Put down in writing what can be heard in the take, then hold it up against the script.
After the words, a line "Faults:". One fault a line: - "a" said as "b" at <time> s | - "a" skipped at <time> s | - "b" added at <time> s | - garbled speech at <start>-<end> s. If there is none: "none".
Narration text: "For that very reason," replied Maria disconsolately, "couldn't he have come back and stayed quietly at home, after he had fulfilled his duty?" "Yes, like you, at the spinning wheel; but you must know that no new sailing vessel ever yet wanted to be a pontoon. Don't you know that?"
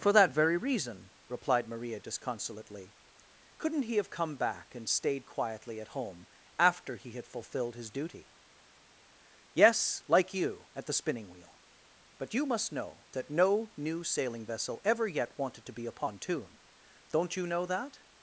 "For that very reason," replied Maria disconsolately, "couldn't he have come back and stayed quietly at home, after he had fulfilled his duty?" "Yes, like you, at the spinning wheel; but you must know that no new sailing vessel ever yet wanted to be a pontoon. Don't you know that?"
Faults:
none